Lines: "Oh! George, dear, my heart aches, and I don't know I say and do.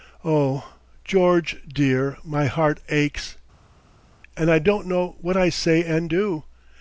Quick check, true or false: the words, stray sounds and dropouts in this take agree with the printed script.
false